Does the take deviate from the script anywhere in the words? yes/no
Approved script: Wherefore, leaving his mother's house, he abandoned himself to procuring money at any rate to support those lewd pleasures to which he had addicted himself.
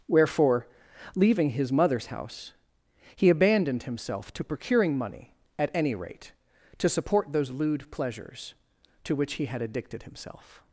no